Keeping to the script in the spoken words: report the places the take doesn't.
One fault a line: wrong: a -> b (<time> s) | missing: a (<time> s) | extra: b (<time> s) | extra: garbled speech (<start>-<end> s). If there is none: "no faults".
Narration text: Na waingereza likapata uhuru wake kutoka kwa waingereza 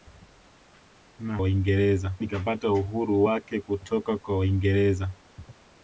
no faults